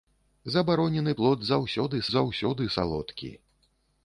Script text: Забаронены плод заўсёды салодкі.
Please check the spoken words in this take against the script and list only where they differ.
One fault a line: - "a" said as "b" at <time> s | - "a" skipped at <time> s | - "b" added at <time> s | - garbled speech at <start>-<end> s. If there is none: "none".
- "заўсёды" added at 2.1 s